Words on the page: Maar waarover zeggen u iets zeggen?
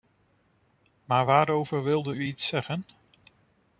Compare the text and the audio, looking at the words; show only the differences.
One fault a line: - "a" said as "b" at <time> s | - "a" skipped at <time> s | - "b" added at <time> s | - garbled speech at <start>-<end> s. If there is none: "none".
- "zeggen" said as "wilde" at 1.8 s